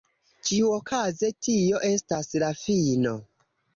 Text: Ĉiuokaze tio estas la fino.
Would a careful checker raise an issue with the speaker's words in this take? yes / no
no